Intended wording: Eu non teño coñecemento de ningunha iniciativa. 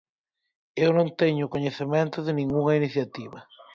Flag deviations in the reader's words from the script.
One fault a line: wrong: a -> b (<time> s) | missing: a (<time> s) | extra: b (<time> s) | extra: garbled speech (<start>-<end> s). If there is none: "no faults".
no faults